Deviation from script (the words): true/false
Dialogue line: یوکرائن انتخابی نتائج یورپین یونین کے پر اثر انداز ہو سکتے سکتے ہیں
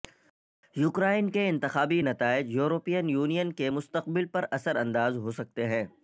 true